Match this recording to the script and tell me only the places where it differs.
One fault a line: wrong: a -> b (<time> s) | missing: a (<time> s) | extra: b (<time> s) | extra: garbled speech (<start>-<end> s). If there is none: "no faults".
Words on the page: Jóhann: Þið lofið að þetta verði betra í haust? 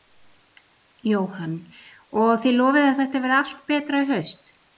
extra: Og (2.2 s)
extra: allt (3.4 s)